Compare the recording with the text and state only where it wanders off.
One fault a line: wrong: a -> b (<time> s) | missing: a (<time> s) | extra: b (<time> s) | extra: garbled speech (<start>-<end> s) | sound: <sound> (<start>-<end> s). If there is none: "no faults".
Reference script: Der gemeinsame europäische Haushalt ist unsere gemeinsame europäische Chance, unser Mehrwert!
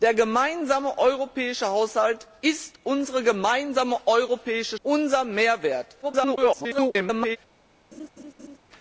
missing: Chance (4.8 s)
extra: garbled speech (6.0-7.4 s)
sound: laugh (7.9-8.6 s)